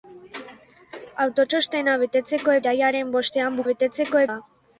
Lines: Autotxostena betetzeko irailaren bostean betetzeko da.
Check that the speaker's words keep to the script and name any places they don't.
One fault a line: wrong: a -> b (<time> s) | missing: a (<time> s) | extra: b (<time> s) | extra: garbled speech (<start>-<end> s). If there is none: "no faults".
no faults